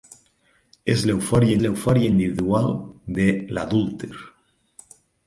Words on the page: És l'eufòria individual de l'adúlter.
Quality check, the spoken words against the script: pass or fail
fail